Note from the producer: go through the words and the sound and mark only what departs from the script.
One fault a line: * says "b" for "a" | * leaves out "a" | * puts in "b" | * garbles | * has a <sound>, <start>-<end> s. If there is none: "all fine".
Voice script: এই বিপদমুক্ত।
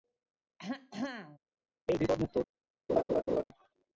* has a throat clearing, 0.6-1.4 s
* has a laugh, 2.9-3.4 s